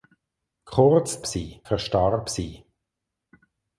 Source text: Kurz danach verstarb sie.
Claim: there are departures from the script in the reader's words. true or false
true